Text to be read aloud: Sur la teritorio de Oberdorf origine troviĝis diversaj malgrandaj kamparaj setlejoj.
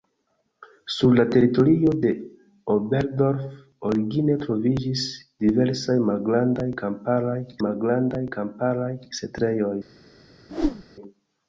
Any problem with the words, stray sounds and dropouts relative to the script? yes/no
yes